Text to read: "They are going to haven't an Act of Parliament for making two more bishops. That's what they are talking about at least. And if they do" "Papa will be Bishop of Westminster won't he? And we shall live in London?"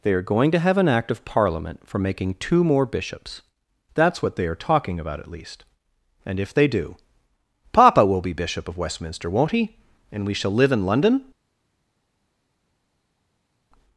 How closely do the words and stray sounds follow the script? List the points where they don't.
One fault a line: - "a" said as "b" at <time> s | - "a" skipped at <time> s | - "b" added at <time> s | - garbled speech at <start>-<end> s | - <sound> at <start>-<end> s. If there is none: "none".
- "haven't" said as "have" at 0.6 s